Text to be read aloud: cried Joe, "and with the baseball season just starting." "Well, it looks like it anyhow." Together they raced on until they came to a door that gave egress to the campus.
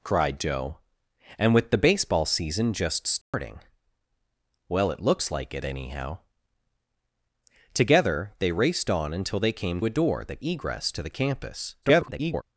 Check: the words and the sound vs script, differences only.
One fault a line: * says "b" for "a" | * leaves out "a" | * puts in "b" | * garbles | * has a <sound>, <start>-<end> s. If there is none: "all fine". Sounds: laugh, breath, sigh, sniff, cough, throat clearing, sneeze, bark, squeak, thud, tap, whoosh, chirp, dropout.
* has a dropout, 3.2-3.3 s
* leaves out "to"
* leaves out "gave"
* garbles